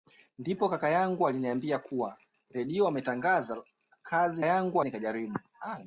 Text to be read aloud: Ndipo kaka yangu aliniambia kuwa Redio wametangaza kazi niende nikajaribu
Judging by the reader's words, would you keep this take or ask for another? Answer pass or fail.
fail